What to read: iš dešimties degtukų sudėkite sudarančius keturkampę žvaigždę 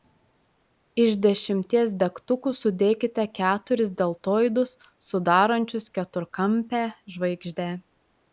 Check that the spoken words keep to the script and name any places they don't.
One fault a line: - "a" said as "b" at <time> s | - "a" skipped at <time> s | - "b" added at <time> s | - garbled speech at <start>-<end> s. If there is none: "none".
- "keturis deltoidus" added at 3.4 s